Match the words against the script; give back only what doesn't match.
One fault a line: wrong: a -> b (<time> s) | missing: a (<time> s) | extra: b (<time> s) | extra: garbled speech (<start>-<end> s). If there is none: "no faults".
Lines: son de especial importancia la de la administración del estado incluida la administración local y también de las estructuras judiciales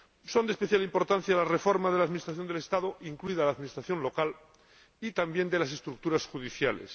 extra: reforma (1.4 s)